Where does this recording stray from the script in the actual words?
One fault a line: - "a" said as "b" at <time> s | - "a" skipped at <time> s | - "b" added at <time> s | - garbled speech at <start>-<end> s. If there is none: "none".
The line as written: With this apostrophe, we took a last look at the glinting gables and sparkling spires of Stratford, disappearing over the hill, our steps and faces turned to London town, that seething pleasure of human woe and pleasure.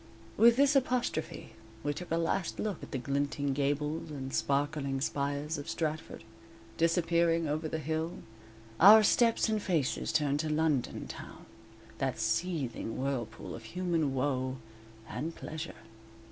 - "pleasure" said as "whirlpool" at 13.0 s